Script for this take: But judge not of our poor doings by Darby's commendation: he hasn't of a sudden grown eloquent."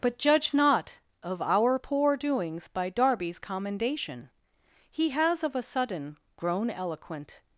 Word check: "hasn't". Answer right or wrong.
wrong